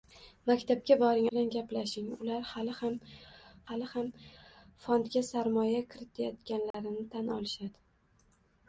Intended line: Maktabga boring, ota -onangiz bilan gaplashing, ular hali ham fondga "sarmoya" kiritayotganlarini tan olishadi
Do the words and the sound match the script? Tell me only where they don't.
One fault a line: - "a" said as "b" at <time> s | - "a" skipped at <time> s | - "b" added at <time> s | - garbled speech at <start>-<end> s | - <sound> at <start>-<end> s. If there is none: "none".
- "ota onangiz" skipped at 1.2 s
- "hali ham" added at 3.7 s
- dropout at 6.7-6.7 s